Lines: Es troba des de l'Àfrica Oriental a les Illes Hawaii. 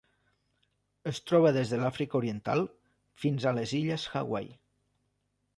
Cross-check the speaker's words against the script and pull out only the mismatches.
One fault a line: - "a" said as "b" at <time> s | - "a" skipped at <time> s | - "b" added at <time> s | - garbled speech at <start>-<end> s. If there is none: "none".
- "fins" added at 3.2 s